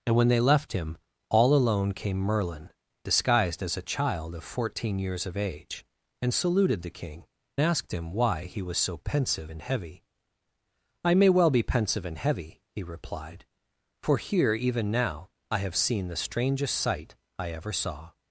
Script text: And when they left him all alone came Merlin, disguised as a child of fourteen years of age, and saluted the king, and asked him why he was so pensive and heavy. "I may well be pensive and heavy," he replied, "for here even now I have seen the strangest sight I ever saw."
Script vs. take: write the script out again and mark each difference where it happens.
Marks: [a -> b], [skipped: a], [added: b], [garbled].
And when they left him all alone came Merlin, disguised as a child of fourteen years of age, and saluted the king, [skipped: and] asked him why he was so pensive and heavy. "I may well be pensive and heavy," he replied, "for here even now I have seen the strangest sight I ever saw."